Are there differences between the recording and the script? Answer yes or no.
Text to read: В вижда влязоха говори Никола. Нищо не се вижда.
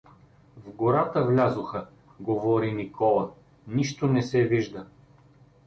yes